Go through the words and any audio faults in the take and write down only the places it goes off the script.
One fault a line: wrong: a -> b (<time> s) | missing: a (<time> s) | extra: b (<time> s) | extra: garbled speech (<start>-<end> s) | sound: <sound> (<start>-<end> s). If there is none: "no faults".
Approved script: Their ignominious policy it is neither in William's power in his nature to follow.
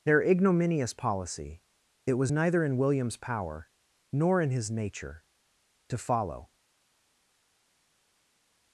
wrong: is -> was (2.1 s)
extra: nor (4.1 s)